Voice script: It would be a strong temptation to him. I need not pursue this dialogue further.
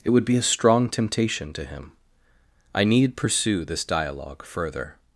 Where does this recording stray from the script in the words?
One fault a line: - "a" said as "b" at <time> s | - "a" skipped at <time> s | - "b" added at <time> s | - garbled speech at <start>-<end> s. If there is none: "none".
- "not" skipped at 3.2 s